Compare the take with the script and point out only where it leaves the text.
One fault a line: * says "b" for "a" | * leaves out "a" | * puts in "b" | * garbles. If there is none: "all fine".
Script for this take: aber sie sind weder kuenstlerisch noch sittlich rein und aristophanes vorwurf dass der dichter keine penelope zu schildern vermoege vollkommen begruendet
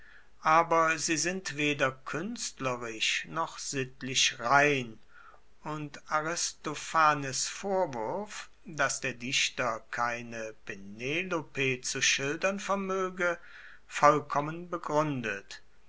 all fine